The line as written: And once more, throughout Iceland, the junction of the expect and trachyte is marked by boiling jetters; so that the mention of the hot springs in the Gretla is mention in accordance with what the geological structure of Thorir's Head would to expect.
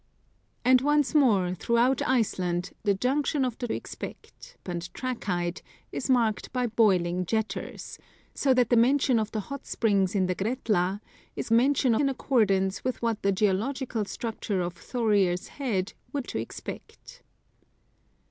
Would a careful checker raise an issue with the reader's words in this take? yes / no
no